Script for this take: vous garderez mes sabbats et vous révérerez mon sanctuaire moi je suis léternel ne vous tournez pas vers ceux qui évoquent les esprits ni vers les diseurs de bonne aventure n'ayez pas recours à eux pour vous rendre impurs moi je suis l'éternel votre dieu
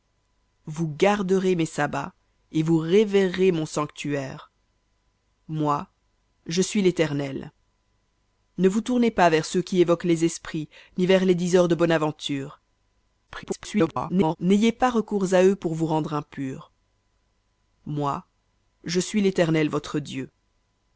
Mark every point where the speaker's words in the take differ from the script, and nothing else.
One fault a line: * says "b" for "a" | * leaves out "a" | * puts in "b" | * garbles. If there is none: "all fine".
* garbles